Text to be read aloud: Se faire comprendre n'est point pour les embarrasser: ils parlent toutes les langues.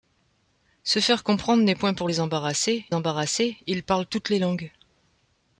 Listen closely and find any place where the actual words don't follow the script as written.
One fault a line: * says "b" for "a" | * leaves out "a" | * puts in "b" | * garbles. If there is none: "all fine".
* puts in "embarrasser"